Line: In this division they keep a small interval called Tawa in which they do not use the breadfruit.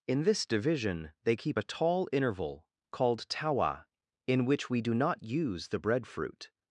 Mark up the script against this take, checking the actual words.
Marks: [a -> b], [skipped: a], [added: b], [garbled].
In this division they keep a [small -> tall] interval called Tawa in which [they -> we] do not use the breadfruit.